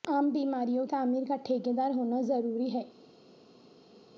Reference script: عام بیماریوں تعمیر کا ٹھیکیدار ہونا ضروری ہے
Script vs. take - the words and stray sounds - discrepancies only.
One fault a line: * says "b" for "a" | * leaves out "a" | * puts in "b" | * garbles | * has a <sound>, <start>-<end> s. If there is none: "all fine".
all fine